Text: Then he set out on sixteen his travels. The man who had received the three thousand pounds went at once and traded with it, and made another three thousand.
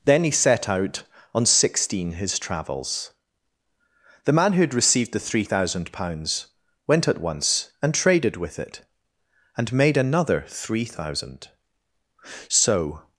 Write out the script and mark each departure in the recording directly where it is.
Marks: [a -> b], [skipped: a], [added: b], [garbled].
Then he set out on sixteen his travels. The man who had received the three thousand pounds went at once and traded with it, and made another three thousand. [added: So]